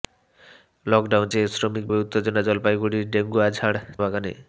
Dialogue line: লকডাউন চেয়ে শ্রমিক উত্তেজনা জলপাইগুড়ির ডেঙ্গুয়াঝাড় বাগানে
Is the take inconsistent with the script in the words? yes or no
no